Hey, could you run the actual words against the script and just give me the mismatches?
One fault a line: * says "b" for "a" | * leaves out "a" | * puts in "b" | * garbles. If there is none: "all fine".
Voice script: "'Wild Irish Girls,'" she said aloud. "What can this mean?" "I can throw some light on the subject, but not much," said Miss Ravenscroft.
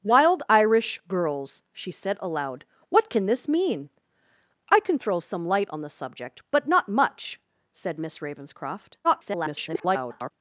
* garbles